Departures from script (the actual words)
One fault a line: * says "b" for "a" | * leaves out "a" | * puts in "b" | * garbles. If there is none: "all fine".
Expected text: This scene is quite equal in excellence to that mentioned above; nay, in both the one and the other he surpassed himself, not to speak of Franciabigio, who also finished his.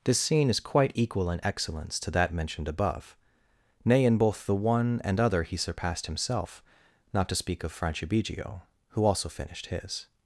* leaves out "the"